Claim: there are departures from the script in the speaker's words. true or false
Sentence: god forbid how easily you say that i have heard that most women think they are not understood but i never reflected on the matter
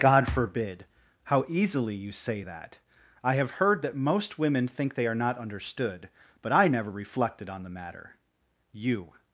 true